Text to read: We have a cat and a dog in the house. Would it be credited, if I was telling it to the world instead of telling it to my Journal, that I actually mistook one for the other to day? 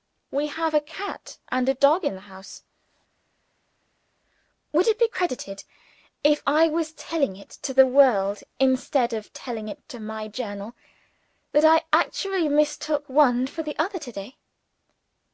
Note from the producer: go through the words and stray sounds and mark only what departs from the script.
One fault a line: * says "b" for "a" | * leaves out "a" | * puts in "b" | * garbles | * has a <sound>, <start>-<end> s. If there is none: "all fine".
all fine